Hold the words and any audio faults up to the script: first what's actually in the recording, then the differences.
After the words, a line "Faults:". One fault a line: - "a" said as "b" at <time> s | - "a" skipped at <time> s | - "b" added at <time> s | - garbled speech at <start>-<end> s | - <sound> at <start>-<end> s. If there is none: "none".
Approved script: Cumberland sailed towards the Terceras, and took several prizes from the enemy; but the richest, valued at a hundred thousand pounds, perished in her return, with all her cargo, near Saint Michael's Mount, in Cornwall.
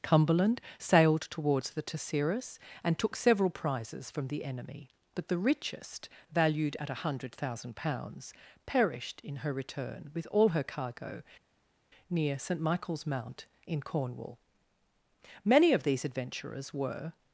Cumberland sailed towards the Terceras, and took several prizes from the enemy; but the richest, valued at a hundred thousand pounds, perished in her return, with all her cargo, near Saint Michael's Mount, in Cornwall. Many of these adventurers were
Faults:
- "Many of these adventurers were" added at 15.4 s